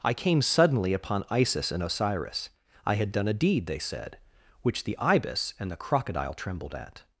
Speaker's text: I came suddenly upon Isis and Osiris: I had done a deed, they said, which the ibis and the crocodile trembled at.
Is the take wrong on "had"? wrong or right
right